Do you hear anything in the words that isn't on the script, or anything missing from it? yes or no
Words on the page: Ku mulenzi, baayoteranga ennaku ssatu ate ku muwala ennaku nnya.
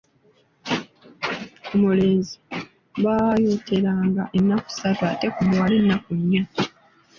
no